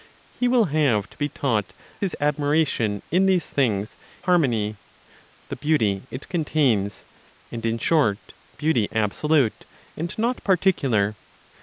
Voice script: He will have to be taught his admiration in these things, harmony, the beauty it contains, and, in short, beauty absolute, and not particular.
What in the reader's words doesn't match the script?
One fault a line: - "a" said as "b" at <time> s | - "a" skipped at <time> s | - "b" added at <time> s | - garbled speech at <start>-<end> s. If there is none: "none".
none